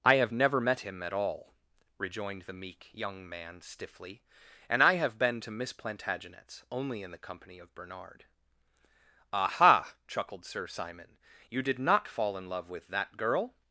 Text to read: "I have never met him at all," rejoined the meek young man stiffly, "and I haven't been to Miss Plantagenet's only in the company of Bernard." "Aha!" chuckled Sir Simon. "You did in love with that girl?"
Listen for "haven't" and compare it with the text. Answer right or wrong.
wrong